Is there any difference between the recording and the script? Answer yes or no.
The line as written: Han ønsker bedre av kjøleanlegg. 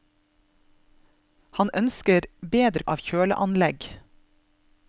no